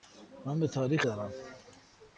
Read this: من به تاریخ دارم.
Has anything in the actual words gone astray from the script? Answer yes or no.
no